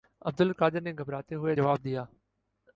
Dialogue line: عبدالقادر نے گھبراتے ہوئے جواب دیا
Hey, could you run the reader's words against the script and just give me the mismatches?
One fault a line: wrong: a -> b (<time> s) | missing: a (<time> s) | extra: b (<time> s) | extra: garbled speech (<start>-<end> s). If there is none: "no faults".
no faults